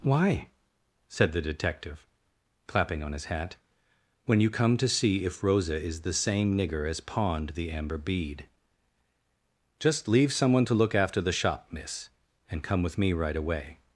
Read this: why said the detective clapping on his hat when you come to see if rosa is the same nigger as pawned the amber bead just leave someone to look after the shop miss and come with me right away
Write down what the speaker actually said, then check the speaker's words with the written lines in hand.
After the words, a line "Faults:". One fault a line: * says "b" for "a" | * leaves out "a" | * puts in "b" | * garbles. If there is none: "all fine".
why said the detective clapping on his hat when you come to see if rosa is the same nigger as pawned the amber bead just leave someone to look after the shop miss and come with me right away
Faults:
all fine